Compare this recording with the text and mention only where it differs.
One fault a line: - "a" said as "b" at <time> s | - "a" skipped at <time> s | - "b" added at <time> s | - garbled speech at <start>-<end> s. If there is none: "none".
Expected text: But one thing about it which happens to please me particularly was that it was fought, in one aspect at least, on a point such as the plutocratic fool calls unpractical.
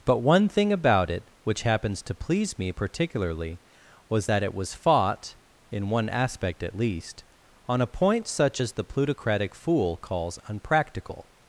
none